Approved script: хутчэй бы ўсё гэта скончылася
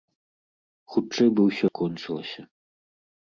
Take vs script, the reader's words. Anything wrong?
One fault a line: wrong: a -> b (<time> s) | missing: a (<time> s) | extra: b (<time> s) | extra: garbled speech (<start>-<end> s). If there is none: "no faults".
missing: гэта (1.6 s)